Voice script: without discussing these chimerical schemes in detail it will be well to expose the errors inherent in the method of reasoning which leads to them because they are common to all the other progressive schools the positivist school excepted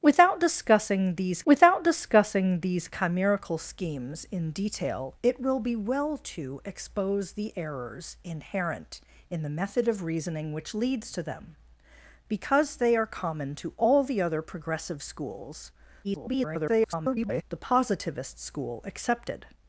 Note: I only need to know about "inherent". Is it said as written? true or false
true